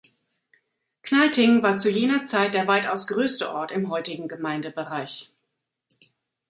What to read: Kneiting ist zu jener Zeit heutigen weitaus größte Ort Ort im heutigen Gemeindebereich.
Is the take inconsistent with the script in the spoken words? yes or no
yes